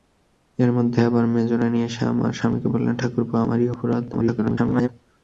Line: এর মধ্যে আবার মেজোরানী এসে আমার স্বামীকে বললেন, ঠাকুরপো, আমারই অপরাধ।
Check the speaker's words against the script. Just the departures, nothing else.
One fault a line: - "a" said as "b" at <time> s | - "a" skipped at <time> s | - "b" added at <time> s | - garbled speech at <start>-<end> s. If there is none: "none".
- garbled speech at 4.1-4.9 s